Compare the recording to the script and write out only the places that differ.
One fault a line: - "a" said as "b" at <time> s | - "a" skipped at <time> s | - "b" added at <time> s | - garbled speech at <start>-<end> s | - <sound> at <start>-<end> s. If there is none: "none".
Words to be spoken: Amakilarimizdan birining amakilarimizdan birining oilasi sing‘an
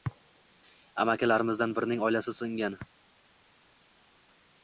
- "amakilarimizdan birining" skipped at 2.0 s